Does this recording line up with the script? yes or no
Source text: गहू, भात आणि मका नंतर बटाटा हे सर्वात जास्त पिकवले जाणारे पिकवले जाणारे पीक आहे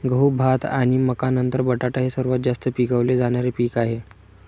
no